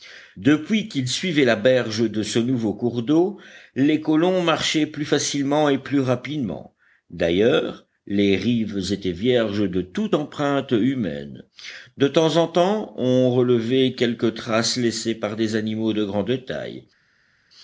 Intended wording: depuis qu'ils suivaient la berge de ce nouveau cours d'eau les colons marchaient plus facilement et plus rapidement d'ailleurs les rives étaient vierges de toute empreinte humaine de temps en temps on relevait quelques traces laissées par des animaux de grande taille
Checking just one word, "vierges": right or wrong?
right